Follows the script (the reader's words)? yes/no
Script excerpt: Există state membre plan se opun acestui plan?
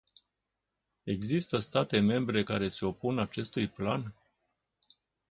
no